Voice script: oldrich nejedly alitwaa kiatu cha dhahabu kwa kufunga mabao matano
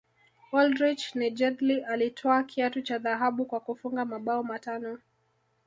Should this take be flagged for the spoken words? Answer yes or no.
no